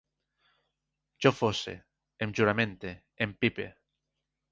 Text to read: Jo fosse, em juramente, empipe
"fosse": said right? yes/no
yes